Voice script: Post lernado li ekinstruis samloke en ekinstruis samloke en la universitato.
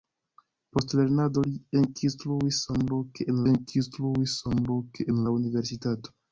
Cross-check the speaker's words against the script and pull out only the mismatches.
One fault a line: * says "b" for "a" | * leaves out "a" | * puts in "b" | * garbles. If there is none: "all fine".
all fine